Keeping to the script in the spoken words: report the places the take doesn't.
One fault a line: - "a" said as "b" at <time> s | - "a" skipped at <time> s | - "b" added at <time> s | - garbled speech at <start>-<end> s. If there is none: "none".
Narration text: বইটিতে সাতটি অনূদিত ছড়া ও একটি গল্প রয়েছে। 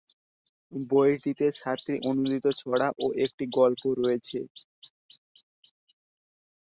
none